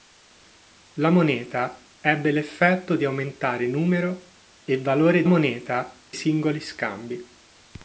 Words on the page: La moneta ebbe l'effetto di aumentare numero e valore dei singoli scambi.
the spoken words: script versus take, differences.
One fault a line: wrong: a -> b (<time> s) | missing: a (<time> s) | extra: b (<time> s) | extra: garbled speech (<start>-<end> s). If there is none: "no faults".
wrong: dei -> moneta (5.3 s)